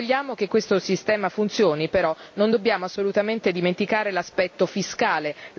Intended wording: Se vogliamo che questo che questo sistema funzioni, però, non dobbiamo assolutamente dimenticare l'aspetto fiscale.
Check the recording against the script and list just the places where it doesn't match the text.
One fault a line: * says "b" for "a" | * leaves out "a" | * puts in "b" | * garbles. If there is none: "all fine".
* leaves out "che questo"